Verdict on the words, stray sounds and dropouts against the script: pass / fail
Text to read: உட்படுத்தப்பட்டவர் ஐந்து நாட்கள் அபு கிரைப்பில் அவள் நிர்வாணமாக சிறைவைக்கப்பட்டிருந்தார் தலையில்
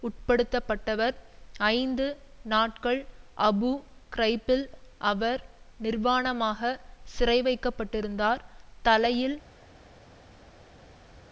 fail